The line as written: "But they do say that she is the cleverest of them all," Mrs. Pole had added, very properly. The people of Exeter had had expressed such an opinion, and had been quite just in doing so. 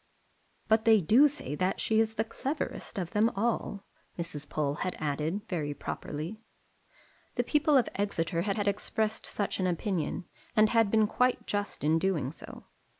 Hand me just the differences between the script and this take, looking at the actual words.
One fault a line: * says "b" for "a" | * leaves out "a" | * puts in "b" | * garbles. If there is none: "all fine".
all fine